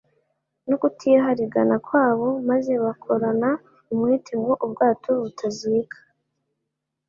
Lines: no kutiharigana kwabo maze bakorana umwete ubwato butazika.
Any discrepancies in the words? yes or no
yes